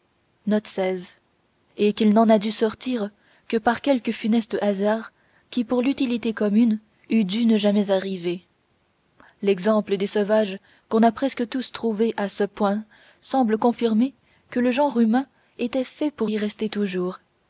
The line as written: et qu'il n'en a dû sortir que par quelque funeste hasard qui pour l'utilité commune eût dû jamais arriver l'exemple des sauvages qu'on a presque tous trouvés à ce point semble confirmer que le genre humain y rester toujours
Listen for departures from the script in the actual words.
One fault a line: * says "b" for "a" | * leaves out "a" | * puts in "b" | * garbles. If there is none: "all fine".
* puts in "ne"
* puts in "était fait pour"